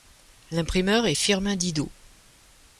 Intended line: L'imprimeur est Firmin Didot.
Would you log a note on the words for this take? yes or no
no